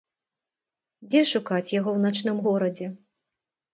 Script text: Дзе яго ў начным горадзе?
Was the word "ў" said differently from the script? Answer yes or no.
no